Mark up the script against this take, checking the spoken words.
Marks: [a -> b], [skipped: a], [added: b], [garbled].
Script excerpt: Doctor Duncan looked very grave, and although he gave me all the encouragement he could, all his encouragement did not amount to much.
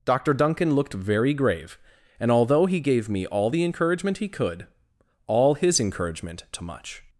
Doctor Duncan looked very grave, and although he gave me all the encouragement he could, all his encouragement [skipped: did not amount] to much.